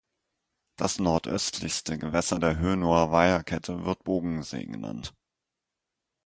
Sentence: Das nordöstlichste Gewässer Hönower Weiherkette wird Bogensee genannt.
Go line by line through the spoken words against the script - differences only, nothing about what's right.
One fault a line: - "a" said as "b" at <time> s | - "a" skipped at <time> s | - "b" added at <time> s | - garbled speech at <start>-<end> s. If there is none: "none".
- "der" added at 2.4 s